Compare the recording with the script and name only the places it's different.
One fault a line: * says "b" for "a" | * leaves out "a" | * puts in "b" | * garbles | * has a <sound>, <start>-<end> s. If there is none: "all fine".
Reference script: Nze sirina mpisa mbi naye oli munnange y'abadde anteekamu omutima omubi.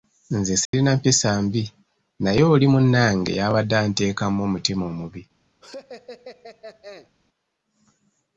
* has a dropout, 0.7-0.7 s
* has a laugh, 5.6-7.1 s